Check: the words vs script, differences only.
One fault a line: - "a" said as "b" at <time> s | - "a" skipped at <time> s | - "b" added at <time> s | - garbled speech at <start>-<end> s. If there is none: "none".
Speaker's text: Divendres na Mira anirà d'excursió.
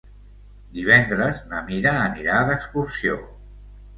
none